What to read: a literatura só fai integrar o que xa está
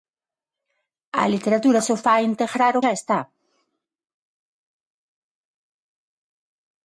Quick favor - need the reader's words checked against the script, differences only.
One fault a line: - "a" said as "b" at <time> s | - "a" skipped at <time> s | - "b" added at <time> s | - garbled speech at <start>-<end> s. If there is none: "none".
- "que" skipped at 2.8 s